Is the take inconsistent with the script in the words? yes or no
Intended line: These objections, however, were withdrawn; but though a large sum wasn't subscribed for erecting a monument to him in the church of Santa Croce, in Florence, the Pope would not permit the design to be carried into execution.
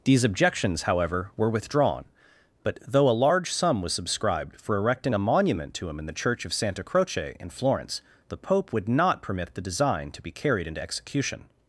yes